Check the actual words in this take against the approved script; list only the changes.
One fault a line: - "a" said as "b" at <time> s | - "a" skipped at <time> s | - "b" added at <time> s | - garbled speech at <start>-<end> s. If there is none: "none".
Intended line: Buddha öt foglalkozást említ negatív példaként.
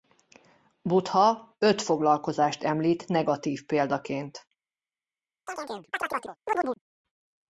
none